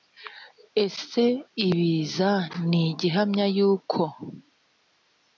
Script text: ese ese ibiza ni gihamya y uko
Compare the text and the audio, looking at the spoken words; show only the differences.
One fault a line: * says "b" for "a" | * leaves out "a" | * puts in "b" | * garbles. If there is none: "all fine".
* leaves out "ese"